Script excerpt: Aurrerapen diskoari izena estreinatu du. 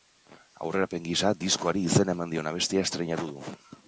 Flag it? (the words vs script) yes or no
yes